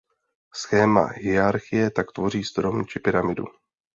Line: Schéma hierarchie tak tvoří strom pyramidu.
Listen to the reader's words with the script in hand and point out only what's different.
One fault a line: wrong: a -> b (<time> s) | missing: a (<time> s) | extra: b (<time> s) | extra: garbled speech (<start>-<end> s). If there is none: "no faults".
extra: či (2.9 s)